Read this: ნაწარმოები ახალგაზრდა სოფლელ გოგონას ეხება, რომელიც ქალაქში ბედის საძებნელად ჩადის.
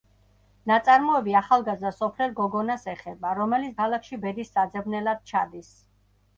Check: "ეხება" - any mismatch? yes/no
no